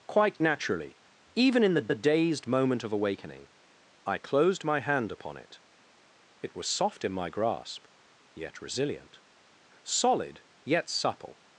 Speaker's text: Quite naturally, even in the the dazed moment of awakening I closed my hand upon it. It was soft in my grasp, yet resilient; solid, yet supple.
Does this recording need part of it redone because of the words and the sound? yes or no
no